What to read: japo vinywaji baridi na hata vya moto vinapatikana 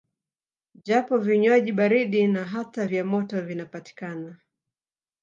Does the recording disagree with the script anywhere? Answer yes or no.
no